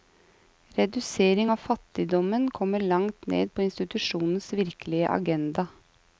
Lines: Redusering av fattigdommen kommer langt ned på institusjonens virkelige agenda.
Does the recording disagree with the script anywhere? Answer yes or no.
no